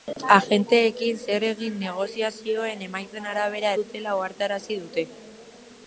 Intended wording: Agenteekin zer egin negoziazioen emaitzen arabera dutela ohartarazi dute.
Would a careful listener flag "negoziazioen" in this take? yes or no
no